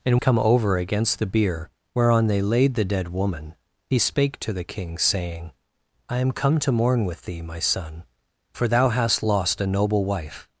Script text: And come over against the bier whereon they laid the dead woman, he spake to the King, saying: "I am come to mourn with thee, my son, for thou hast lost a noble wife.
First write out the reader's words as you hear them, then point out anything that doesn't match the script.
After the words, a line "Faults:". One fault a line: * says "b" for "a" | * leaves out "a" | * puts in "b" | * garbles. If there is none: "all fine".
And come over against the bier whereon they laid the dead woman, he spake to the King, saying: "I am come to mourn with thee, my son, for thou hast lost a noble wife.
Faults:
all fine